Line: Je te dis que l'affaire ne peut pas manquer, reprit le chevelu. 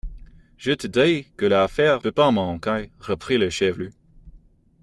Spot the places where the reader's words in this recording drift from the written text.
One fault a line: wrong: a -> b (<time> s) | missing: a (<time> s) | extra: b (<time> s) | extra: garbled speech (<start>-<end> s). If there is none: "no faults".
missing: ne (2.0 s)